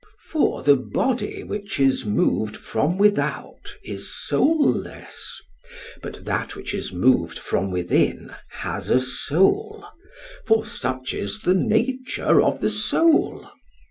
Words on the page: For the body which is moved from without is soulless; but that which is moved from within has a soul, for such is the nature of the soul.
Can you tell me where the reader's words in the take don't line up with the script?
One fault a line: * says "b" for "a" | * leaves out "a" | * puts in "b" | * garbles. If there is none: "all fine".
all fine